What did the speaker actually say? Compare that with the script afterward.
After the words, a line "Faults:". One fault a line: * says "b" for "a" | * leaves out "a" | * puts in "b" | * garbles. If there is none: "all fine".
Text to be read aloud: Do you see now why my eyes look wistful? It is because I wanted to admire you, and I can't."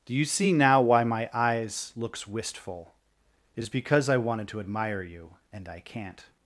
Do you see now why my eyes looks wistful? It is because I wanted to admire you, and I can't."
Faults:
* says "looks" for "look"